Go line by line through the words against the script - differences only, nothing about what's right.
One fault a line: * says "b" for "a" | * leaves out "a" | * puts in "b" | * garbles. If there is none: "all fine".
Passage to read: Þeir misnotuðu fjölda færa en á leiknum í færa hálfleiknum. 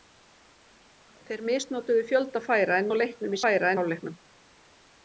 all fine